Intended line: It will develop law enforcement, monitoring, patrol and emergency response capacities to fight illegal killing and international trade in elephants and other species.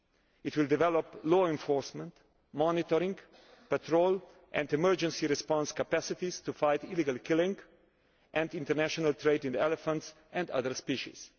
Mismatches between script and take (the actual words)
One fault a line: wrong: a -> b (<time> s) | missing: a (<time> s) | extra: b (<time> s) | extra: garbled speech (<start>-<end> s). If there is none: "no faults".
no faults